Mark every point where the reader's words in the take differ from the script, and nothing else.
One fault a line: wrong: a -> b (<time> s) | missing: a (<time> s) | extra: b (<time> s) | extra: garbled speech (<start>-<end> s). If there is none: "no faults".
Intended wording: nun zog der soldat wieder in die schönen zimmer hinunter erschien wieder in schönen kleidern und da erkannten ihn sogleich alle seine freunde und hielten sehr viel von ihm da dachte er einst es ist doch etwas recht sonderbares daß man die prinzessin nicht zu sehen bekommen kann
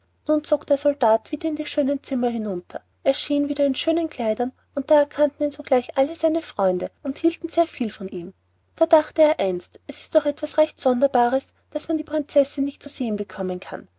no faults